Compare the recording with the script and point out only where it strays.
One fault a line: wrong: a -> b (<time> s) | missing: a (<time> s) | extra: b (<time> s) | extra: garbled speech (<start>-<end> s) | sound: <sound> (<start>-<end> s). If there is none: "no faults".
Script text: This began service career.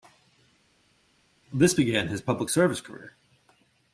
extra: his public (2.1 s)